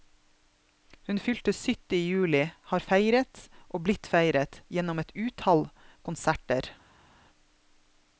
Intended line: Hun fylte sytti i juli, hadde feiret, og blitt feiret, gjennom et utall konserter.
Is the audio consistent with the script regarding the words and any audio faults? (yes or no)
no